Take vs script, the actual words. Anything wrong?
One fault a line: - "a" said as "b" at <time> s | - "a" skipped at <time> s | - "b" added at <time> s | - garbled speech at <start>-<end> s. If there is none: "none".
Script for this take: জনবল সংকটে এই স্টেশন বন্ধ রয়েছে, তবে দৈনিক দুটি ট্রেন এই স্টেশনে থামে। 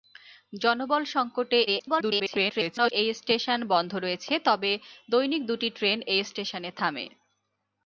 - garbled speech at 1.7-2.9 s